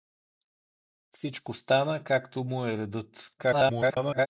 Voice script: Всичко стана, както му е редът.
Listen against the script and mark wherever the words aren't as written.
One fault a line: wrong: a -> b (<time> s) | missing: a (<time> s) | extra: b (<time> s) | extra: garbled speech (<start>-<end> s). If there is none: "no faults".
extra: garbled speech (3.4-4.3 s)